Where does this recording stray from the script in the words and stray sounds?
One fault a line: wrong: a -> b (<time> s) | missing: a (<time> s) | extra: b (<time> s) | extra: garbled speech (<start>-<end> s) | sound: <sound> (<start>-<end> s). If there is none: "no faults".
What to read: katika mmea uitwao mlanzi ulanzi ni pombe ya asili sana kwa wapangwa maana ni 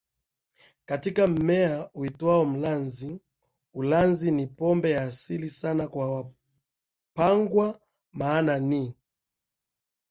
no faults